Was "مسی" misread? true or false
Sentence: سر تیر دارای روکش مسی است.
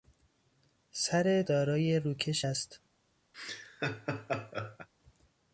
true